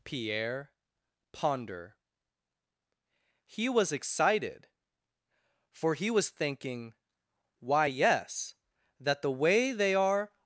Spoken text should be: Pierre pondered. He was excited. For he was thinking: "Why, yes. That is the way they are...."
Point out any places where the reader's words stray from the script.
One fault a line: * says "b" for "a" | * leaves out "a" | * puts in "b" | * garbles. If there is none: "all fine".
* says "ponder" for "pondered"
* leaves out "is"